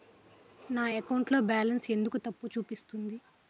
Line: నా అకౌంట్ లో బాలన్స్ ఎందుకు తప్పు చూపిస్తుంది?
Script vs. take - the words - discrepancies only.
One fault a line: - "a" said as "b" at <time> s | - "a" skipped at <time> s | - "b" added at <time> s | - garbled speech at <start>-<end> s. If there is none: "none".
none